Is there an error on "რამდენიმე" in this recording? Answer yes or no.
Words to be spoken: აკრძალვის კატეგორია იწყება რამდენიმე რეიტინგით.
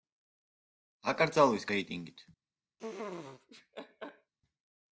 yes